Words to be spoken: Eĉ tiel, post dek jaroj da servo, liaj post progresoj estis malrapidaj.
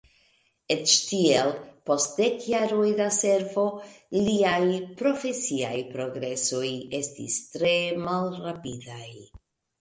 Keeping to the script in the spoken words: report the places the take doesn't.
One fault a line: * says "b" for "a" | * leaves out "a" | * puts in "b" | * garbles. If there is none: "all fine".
* says "profesiaj" for "post"
* puts in "tre"